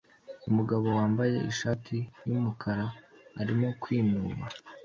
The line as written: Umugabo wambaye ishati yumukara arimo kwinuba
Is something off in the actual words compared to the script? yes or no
no